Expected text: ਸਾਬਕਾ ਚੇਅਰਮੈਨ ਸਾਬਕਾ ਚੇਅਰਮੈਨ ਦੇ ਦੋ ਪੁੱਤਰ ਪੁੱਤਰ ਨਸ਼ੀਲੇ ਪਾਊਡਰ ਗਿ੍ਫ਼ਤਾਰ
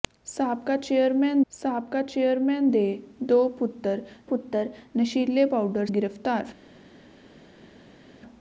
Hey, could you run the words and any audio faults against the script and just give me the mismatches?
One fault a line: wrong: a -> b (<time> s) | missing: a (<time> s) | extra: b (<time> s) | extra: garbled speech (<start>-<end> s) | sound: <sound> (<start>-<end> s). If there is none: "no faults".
no faults